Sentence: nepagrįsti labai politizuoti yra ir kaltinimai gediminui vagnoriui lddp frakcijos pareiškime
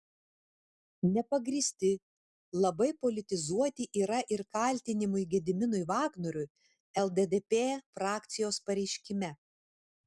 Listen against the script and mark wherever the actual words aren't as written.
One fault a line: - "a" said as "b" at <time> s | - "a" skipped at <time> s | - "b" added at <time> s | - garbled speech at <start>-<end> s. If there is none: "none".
none